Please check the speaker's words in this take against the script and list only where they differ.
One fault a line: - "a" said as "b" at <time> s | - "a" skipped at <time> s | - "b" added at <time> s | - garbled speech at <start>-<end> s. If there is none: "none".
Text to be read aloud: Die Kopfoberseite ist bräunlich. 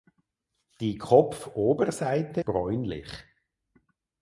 - "ist" skipped at 2.4 s